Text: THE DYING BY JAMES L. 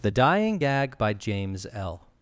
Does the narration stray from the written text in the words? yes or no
yes